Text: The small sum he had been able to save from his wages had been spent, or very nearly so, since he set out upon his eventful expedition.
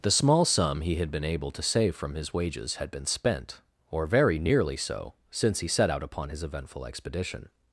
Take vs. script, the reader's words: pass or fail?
pass